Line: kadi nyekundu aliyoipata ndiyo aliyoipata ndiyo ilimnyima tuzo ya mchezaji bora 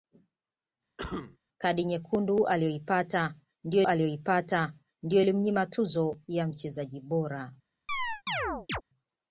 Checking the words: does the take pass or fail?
pass